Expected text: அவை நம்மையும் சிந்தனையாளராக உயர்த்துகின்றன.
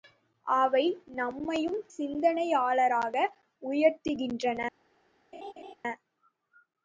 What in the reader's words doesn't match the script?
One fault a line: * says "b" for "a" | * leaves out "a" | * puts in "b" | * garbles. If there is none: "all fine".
all fine